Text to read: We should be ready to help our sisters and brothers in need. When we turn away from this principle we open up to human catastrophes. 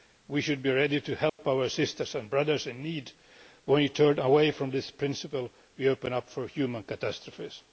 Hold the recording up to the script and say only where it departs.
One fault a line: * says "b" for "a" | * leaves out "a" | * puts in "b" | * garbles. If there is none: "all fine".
all fine